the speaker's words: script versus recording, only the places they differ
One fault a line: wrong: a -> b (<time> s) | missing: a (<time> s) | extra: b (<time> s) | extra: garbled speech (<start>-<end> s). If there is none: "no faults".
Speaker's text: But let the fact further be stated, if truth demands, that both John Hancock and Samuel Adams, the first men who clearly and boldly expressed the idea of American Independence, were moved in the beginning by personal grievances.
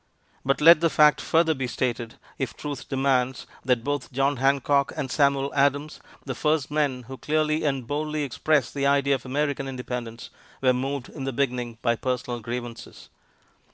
no faults